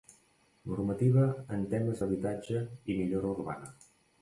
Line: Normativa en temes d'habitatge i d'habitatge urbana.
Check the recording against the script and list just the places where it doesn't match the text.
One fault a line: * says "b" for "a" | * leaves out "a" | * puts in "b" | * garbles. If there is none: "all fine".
* says "millora" for "d'habitatge"